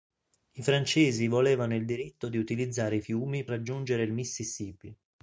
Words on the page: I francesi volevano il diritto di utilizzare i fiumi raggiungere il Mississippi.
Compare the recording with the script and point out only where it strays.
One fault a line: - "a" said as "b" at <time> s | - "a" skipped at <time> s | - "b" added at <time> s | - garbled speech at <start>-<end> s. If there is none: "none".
none